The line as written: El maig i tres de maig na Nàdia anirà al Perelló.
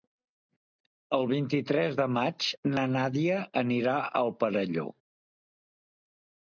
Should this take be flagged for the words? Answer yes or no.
yes